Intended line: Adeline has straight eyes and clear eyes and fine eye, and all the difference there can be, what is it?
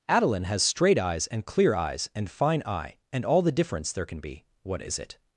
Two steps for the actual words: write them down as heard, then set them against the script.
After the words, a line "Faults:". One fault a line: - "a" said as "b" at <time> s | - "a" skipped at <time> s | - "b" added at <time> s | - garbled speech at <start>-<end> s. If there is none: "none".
Adeline has straight eyes and clear eyes and fine eye, and all the difference there can be, what is it?
Faults:
none